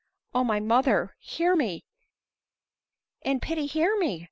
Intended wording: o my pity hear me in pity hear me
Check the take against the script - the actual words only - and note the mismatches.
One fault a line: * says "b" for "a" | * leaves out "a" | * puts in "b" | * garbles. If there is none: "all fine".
* says "mother" for "pity"